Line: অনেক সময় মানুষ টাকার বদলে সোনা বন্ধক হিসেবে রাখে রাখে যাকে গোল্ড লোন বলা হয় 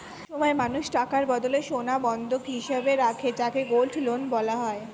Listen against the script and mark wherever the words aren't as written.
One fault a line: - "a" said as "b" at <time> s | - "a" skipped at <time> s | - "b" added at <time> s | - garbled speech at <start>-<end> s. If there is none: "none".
- "রাখে" skipped at 3.3 s